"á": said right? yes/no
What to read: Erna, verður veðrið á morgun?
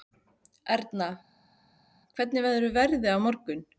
yes